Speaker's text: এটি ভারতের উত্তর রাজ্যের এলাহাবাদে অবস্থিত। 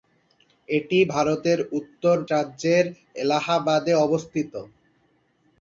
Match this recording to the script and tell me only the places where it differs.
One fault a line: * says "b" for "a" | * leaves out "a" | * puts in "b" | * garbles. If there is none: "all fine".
all fine